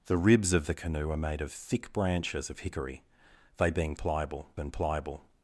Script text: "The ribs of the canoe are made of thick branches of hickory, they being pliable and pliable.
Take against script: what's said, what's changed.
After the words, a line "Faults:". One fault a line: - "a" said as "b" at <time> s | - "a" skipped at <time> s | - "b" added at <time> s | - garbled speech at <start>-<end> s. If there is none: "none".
"The ribs of the canoe are made of thick branches of hickory, they being pliable and pliable.
Faults:
none